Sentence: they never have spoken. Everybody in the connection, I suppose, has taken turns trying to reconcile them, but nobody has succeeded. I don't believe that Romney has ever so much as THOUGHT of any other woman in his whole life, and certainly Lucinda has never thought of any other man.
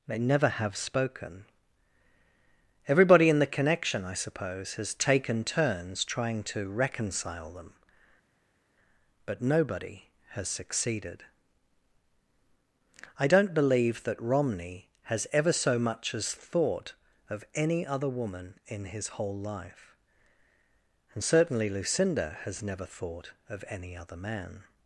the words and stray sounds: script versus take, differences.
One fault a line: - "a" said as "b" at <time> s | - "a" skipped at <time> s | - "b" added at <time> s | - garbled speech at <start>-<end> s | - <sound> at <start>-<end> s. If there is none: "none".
none